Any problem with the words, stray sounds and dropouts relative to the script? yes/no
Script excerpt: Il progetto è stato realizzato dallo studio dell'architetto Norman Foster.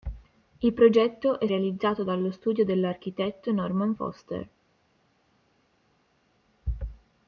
yes